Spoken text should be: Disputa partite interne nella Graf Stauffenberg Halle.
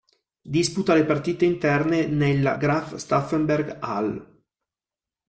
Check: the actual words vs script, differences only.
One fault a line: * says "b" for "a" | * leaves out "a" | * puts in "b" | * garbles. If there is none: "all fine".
* puts in "le"